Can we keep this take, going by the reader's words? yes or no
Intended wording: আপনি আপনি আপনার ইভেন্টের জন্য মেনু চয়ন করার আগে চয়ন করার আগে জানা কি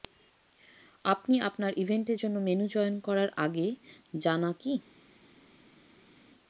no